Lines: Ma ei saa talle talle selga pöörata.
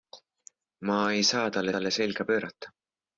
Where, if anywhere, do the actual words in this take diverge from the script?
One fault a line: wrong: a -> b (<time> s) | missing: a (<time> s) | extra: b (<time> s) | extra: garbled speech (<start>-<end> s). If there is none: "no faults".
no faults